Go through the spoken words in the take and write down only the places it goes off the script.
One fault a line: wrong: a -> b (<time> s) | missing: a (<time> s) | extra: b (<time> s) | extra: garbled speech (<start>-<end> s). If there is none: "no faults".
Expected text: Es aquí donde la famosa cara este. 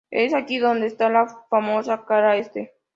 extra: está (0.9 s)